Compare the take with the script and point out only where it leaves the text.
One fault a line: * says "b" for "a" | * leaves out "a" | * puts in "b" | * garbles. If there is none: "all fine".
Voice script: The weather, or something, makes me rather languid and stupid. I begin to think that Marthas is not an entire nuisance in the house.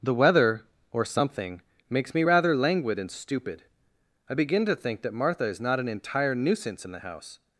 * says "Martha" for "Marthas"